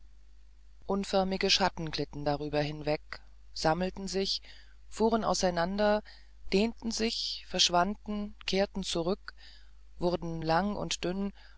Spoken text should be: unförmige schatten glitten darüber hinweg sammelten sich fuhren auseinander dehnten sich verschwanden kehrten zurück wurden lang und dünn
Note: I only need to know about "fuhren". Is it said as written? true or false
true